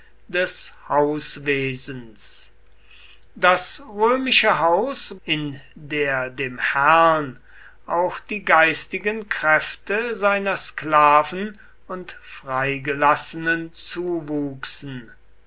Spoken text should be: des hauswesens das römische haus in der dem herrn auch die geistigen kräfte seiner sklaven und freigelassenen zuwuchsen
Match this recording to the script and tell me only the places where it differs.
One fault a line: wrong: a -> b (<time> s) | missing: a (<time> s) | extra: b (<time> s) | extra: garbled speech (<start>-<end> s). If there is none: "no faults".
no faults